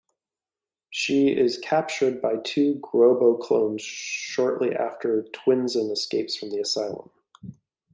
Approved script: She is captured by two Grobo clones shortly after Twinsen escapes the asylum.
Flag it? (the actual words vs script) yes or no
yes